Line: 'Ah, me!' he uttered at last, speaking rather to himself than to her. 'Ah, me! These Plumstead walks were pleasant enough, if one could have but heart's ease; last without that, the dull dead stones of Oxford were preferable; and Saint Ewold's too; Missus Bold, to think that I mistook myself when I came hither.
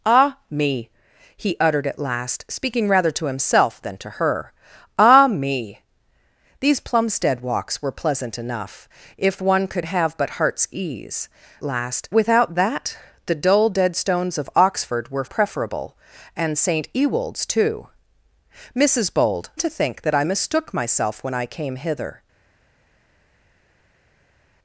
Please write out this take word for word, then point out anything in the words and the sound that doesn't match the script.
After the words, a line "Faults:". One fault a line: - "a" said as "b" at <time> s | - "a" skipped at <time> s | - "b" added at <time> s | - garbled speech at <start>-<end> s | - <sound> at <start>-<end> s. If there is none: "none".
'Ah, me!' he uttered at last, speaking rather to himself than to her. 'Ah, me! These Plumstead walks were pleasant enough, if one could have but heart's ease; last without that, the dull dead stones of Oxford were preferable; and Saint Ewold's too; Missus Bold, to think that I mistook myself when I came hither.
Faults:
none